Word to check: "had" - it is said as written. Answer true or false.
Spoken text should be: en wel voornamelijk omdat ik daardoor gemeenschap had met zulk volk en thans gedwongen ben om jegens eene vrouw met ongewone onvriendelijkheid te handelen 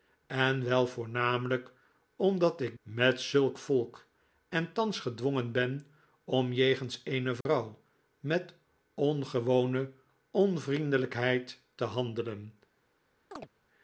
false